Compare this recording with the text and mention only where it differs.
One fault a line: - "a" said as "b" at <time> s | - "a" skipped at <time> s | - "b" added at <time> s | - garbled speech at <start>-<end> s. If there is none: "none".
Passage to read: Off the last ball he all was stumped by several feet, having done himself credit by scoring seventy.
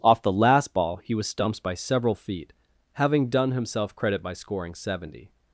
- "all" skipped at 1.1 s